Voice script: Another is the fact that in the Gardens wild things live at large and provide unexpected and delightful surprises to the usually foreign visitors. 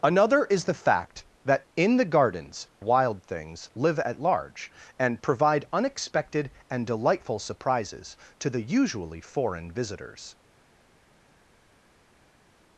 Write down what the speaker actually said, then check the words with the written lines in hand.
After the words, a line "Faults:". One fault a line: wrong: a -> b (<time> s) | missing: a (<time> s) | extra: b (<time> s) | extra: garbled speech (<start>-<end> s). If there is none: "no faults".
Another is the fact that in the Gardens wild things live at large and provide unexpected and delightful surprises to the usually foreign visitors.
Faults:
no faults